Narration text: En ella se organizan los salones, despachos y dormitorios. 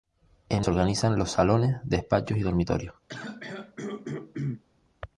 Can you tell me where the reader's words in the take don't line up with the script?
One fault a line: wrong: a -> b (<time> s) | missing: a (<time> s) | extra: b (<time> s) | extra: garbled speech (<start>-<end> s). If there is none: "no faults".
missing: ella (0.7 s)